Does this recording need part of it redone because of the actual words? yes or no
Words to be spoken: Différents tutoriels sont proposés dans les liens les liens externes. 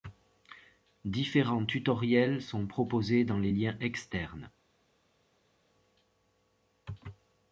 yes